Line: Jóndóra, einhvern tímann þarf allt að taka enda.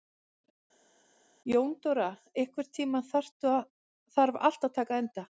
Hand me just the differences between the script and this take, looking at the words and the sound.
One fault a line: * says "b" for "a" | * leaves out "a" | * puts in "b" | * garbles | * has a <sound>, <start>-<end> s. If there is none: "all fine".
all fine